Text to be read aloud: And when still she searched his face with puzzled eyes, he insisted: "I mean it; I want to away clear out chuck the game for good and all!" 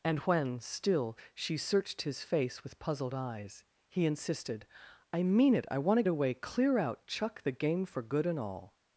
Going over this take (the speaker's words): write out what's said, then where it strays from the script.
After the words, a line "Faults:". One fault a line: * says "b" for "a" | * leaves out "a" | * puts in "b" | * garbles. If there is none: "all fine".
And when still she searched his face with puzzled eyes, he insisted: "I mean it; I want to away clear out chuck the game for good and all!"
Faults:
all fine